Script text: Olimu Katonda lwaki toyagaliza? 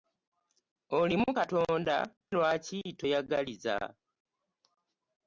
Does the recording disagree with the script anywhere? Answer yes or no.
no